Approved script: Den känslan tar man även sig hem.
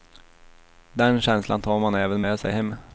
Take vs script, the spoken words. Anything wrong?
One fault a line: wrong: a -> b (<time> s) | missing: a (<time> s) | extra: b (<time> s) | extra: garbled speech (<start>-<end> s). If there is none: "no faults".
extra: med (2.2 s)